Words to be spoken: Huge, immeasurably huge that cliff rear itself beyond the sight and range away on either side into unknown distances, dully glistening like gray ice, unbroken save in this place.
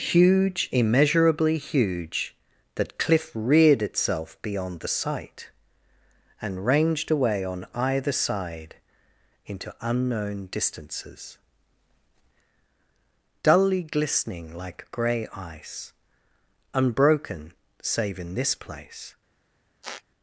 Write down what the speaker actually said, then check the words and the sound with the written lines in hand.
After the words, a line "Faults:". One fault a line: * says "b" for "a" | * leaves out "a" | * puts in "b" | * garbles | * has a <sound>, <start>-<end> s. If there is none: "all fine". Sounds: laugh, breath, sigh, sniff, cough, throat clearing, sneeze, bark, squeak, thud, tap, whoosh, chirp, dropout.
Huge, immeasurably huge that cliff reared itself beyond the sight and ranged away on either side into unknown distances, dully glistening like gray ice, unbroken save in this place.
Faults:
* says "reared" for "rear"
* says "ranged" for "range"
* has a squeak, 19.8-20.0 s